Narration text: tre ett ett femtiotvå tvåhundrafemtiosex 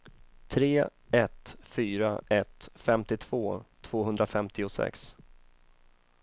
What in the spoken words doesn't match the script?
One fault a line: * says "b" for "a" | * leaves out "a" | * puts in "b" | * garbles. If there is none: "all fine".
* puts in "fyra"